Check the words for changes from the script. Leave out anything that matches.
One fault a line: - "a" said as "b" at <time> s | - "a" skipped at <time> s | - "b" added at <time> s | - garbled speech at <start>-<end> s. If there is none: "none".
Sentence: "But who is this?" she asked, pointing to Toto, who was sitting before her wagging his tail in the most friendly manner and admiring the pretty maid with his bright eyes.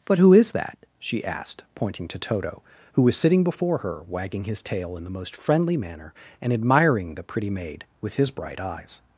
- "this" said as "that" at 0.5 s